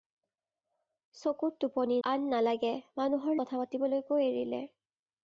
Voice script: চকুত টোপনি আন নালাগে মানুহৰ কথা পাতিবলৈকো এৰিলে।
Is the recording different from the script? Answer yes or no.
no